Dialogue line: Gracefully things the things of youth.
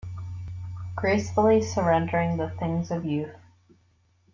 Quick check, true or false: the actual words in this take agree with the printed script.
false